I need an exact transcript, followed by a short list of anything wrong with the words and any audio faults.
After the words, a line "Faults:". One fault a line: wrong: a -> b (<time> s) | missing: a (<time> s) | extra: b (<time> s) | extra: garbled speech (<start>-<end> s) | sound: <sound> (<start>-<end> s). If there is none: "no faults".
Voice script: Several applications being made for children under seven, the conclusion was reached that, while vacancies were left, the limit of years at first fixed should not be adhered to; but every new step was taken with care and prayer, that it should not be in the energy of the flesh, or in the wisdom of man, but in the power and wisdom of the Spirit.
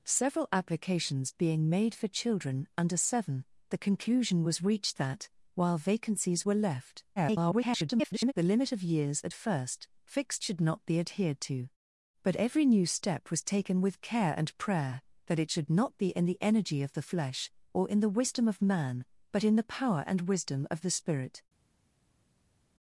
Several applications being made for children under seven, the conclusion was reached that, while vacancies were left, [garbled] the limit of years at first fixed should not be adhered to; but every new step was taken with care and prayer, that it should not be in the energy of the flesh, or in the wisdom of man, but in the power and wisdom of the Spirit.
Faults:
extra: garbled speech (7.2-8.3 s)